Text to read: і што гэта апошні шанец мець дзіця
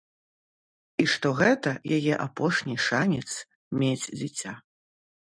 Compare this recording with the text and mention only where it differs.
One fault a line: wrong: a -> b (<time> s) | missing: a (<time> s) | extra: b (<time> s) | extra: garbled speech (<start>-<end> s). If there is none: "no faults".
extra: яе (2.0 s)